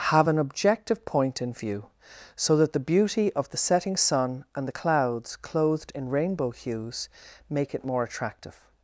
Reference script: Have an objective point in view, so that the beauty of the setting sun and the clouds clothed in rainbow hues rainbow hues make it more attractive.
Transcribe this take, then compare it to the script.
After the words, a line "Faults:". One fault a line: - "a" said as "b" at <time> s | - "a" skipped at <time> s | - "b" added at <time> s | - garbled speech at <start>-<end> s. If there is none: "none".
Have an objective point in view, so that the beauty of the setting sun and the clouds clothed in rainbow hues make it more attractive.
Faults:
- "rainbow hues" skipped at 7.1 s